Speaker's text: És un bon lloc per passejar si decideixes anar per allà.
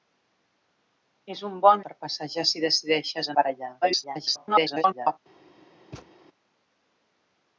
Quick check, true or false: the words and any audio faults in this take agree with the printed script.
false